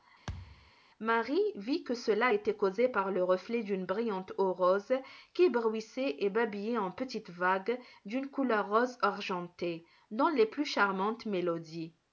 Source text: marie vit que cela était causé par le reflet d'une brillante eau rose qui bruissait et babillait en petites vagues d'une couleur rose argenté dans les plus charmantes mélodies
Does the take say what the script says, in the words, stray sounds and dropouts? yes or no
no